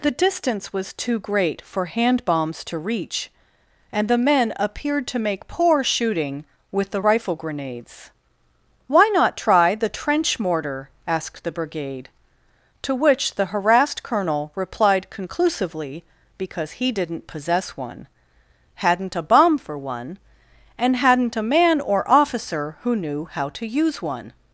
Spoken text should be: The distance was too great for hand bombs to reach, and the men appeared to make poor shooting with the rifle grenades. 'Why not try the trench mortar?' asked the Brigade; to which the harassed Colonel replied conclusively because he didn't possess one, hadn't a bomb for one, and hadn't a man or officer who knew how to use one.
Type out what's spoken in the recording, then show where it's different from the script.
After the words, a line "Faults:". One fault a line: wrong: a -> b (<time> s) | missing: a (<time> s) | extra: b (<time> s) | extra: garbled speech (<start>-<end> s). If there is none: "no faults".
The distance was too great for hand bombs to reach, and the men appeared to make poor shooting with the rifle grenades. 'Why not try the trench mortar?' asked the Brigade; to which the harassed Colonel replied conclusively because he didn't possess one, hadn't a bomb for one, and hadn't a man or officer who knew how to use one.
Faults:
no faults